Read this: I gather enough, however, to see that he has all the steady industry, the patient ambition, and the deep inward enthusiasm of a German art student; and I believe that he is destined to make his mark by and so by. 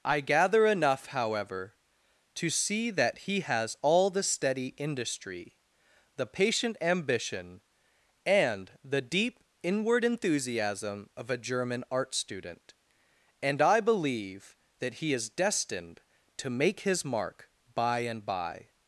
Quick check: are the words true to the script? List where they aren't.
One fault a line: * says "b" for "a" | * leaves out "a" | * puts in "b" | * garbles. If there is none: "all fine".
* leaves out "so"